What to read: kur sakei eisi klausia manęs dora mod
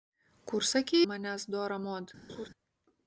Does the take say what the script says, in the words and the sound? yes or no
no